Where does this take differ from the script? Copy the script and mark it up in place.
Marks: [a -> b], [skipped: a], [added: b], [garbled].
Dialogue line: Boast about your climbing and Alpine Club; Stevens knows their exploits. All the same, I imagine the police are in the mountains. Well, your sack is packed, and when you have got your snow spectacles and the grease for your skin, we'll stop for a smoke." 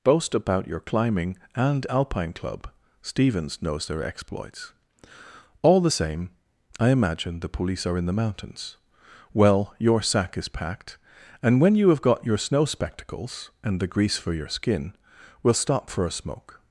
Boast about your climbing and Alpine Club; Stevens knows their exploits. All the same, I imagine the police are in the mountains. Well, your sack is packed, and when you have got your snow spectacles and the grease for your skin, we'll stop for a smoke."